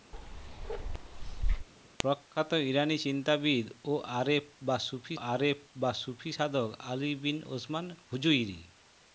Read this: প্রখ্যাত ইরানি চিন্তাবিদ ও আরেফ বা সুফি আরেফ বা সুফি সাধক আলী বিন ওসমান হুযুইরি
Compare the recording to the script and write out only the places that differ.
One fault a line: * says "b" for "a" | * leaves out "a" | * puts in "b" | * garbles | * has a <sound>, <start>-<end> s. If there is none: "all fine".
* has a bark, 0.1-1.7 s